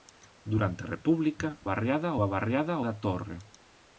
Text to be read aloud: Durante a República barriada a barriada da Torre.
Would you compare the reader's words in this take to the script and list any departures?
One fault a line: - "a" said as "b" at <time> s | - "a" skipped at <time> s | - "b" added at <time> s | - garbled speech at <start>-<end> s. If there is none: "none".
none